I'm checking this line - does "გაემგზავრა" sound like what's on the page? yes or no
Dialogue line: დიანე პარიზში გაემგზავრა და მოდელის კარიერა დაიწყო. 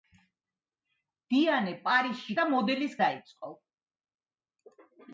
no